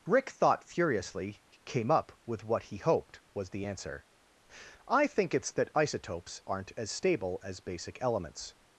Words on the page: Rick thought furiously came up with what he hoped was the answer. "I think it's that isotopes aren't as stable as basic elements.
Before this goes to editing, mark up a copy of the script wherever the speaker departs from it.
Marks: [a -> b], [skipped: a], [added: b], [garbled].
Rick thought furiously came up with what he hoped was the answer. "I think it's that isotopes aren't as stable as basic elements.